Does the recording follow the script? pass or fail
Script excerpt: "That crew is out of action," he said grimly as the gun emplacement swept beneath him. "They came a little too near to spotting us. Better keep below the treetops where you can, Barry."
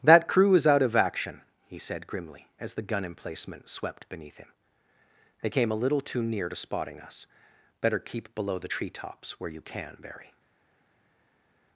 pass